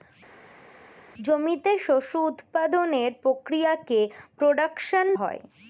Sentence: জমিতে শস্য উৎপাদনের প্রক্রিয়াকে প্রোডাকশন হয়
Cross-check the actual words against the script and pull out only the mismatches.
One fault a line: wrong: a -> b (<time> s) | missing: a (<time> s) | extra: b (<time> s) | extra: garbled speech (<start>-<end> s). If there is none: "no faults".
no faults